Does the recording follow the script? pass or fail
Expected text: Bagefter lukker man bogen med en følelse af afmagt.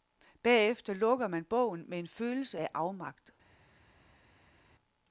pass